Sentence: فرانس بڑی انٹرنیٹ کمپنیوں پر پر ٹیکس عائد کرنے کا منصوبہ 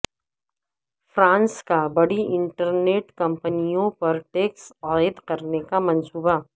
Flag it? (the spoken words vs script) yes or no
yes